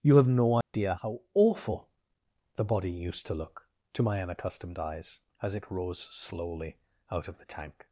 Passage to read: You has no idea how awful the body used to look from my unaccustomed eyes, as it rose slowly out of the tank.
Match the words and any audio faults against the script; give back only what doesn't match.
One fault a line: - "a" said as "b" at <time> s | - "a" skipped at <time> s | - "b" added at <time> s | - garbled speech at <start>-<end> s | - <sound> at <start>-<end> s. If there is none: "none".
- "has" said as "have" at 0.2 s
- dropout at 0.6-0.7 s
- "from" said as "to" at 3.9 s